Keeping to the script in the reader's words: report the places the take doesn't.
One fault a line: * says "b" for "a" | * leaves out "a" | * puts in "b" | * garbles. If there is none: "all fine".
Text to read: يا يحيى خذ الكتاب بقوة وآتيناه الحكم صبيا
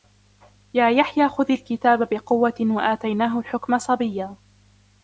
all fine